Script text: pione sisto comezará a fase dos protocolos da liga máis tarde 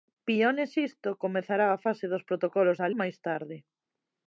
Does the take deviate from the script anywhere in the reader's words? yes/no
yes